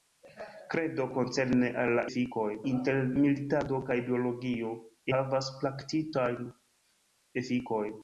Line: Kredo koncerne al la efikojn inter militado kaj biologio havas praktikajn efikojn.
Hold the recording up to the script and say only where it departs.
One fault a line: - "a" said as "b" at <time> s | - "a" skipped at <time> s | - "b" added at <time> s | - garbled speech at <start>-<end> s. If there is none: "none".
none